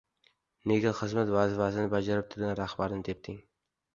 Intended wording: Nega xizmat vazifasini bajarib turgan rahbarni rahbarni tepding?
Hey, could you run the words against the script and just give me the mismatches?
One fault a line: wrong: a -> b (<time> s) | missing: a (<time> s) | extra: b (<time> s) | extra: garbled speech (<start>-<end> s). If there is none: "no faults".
missing: rahbarni (3.0 s)